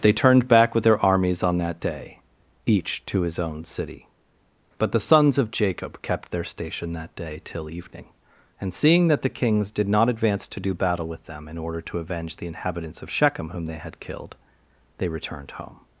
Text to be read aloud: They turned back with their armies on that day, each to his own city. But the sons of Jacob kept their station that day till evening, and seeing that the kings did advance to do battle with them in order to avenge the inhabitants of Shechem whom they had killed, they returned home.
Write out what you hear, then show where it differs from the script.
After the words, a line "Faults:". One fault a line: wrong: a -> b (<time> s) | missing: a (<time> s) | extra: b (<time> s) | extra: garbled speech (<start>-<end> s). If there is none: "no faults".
They turned back with their armies on that day, each to his own city. But the sons of Jacob kept their station that day till evening, and seeing that the kings did not advance to do battle with them in order to avenge the inhabitants of Shechem whom they had killed, they returned home.
Faults:
extra: not (9.9 s)